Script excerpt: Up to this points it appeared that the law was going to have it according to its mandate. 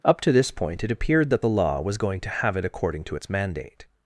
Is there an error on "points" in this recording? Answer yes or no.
yes